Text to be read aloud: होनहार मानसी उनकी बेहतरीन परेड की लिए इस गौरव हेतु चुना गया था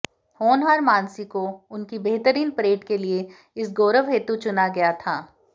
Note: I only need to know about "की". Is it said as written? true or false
false